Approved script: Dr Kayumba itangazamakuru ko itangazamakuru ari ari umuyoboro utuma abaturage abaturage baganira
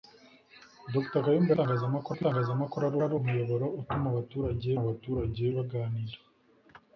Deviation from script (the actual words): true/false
false